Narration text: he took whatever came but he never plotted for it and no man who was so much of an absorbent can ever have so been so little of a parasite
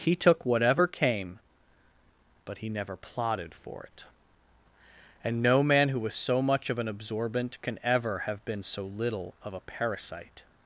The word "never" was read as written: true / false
true